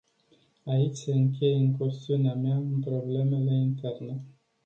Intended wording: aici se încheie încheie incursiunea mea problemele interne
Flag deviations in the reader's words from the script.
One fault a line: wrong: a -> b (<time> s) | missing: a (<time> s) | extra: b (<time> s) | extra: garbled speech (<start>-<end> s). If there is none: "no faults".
missing: încheie (1.6 s)
extra: în (2.6 s)